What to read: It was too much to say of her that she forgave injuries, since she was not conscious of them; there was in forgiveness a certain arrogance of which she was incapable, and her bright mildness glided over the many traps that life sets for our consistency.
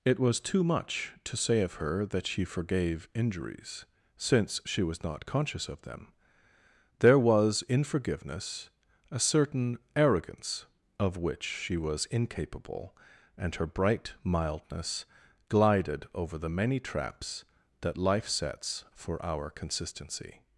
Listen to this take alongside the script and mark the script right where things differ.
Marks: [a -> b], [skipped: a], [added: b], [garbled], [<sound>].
It was too much to say of her that she forgave injuries, since she was not conscious of them; there was in forgiveness a certain arrogance of which she was incapable, and her bright mildness glided over the many traps that life sets for our consistency.